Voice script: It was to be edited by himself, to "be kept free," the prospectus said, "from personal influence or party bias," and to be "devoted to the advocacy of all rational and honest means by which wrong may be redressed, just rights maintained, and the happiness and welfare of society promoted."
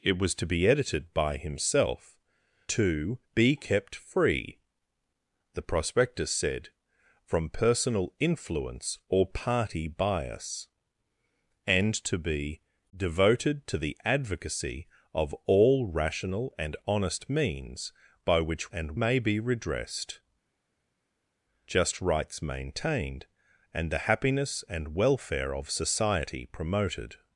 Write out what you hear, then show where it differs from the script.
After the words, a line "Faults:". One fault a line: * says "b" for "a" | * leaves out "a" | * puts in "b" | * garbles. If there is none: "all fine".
It was to be edited by himself, to "be kept free," the prospectus said, "from personal influence or party bias," and to be "devoted to the advocacy of all rational and honest means by which and may be redressed, just rights maintained, and the happiness and welfare of society promoted."
Faults:
* says "and" for "wrong"